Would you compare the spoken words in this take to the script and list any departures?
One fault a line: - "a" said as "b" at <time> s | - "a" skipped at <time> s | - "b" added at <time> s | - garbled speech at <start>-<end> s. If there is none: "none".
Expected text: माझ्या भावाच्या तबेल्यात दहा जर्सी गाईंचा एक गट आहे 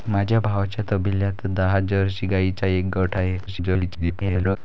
- garbled speech at 3.5-4.6 s